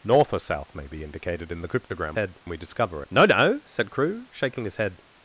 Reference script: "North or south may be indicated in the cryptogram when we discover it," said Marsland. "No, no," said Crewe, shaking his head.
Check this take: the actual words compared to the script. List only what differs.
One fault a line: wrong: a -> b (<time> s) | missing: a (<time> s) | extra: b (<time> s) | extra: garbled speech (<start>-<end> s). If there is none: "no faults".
wrong: when -> head (2.1 s)
missing: it said Marsland (3.0 s)